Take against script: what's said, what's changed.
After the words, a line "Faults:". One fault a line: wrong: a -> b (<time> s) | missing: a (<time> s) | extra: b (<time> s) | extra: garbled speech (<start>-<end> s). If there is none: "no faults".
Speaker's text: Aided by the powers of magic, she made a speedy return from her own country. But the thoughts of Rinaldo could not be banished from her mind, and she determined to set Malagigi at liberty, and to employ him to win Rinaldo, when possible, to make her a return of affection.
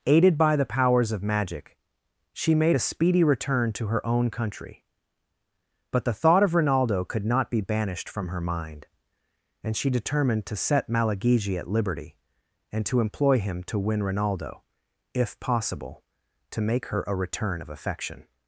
Aided by the powers of magic, she made a speedy return to her own country. But the thought of Rinaldo could not be banished from her mind, and she determined to set Malagigi at liberty, and to employ him to win Rinaldo, if possible, to make her a return of affection.
Faults:
wrong: from -> to (3.7 s)
wrong: thoughts -> thought (6.1 s)
wrong: when -> if (15.1 s)